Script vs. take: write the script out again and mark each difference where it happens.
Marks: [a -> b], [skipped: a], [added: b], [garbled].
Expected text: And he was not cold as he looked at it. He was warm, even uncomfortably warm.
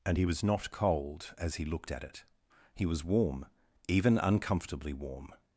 And he was not cold as he looked at it. He was warm, even uncomfortably warm.